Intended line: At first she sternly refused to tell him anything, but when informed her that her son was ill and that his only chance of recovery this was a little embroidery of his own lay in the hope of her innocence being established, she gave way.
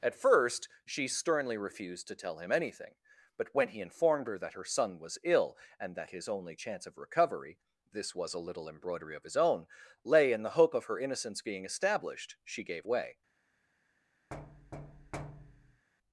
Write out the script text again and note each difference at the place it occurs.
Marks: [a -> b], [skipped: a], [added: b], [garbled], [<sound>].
At first she sternly refused to tell him anything, but when [added: he] informed her that her son was ill and that his only chance of recovery this was a little embroidery of his own lay in the hope of her innocence being established, she gave way. [thud]